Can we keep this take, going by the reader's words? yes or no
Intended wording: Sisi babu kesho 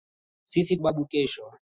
yes